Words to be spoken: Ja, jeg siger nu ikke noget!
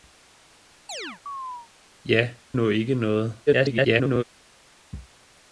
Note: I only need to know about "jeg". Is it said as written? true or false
false